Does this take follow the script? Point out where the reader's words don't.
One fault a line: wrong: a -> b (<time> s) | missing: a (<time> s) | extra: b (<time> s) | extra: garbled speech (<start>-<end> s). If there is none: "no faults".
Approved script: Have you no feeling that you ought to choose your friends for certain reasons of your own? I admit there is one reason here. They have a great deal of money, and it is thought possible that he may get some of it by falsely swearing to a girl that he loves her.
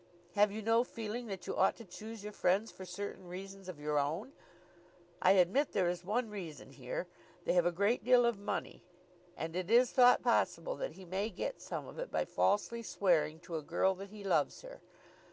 no faults